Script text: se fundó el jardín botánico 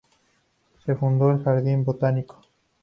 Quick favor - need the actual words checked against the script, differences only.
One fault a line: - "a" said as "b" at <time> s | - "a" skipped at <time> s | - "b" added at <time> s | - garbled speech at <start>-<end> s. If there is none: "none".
none